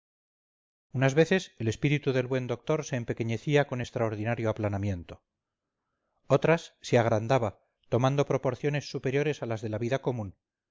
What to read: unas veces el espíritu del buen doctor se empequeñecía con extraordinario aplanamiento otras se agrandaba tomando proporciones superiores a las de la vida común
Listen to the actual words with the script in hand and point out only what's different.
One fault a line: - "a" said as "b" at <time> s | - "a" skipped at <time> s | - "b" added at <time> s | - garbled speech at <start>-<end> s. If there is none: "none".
none